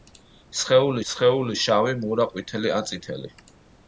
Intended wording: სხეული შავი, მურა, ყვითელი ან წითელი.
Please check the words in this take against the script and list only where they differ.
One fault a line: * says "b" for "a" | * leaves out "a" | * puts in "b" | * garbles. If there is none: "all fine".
* puts in "სხეული"